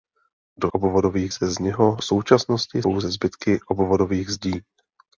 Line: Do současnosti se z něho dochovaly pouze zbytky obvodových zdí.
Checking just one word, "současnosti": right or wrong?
wrong